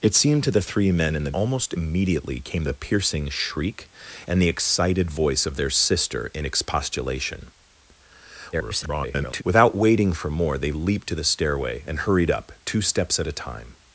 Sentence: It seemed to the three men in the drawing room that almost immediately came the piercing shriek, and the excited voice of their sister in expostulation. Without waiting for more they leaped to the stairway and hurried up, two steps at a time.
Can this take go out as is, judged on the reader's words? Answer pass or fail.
fail